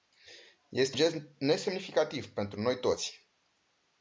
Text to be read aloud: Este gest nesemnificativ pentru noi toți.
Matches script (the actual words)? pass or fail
pass